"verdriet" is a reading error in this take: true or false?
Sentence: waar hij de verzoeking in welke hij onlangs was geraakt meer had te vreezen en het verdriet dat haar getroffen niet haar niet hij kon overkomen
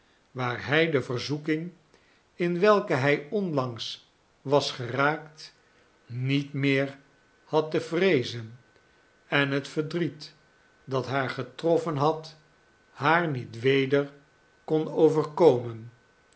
false